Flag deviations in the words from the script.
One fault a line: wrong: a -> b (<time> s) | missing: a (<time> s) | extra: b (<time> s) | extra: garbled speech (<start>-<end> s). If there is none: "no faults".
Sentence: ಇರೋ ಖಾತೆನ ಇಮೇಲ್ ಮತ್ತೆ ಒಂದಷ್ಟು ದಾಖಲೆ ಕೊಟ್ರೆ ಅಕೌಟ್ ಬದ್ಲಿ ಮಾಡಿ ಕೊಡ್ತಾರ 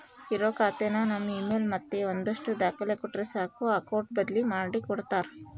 extra: ನಮ್ (1.0 s)
extra: ಸಾಕು (3.3 s)